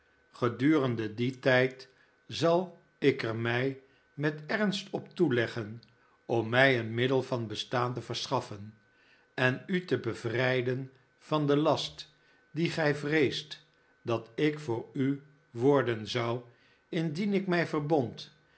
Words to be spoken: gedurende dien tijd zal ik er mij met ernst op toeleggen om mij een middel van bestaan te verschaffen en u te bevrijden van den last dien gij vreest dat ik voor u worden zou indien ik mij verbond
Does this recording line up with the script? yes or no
yes